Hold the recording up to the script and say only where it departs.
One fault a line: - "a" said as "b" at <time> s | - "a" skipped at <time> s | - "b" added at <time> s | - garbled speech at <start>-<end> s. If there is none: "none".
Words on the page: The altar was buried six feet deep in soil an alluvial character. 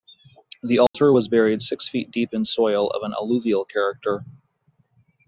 - "of" added at 2.9 s